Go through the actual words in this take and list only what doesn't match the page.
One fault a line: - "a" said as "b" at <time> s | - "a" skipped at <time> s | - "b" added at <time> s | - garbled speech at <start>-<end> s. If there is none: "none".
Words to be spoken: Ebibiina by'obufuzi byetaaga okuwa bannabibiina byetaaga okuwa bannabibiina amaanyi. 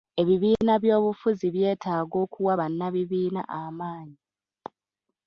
- "byetaaga okuwa bannabibiina" skipped at 3.4 s